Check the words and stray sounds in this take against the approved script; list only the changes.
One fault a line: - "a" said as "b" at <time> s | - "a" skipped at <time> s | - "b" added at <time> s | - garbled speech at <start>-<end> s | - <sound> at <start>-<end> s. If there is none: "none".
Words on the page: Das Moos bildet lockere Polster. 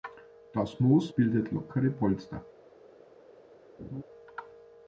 - laugh at 3.8-4.0 s